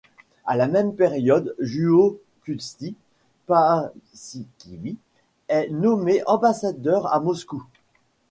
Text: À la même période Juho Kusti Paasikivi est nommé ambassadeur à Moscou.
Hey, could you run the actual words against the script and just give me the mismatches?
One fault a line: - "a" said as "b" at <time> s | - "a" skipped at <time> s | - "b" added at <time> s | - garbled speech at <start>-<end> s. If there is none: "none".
none